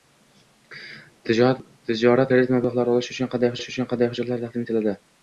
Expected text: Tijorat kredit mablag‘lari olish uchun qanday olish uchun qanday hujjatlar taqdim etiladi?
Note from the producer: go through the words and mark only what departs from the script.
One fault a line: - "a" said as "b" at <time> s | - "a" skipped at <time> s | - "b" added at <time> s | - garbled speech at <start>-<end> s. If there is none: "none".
none